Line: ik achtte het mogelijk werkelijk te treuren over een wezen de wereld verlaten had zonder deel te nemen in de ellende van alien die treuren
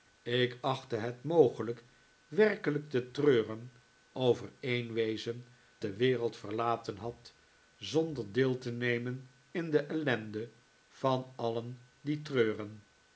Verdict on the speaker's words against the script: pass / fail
pass